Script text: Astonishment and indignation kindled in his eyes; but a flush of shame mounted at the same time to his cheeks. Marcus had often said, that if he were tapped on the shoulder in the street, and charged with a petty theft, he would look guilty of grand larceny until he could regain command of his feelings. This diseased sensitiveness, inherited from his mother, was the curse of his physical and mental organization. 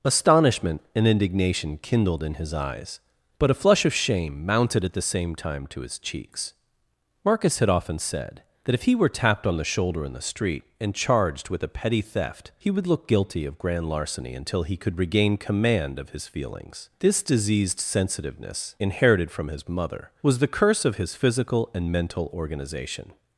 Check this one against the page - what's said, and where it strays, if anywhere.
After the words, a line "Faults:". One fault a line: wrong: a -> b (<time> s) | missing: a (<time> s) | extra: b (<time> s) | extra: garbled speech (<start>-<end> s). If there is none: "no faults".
Astonishment and indignation kindled in his eyes; but a flush of shame mounted at the same time to his cheeks. Marcus had often said, that if he were tapped on the shoulder in the street, and charged with a petty theft, he would look guilty of grand larceny until he could regain command of his feelings. This diseased sensitiveness, inherited from his mother, was the curse of his physical and mental organization.
Faults:
no faults